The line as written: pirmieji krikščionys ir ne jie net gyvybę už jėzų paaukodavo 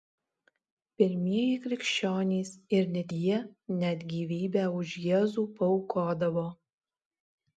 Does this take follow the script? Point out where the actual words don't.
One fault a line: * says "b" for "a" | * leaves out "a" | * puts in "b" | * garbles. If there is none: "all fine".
all fine